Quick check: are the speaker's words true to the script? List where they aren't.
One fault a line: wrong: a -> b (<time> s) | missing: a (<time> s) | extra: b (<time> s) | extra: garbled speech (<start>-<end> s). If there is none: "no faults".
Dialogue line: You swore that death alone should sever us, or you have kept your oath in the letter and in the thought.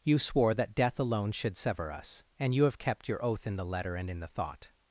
wrong: or -> and (2.4 s)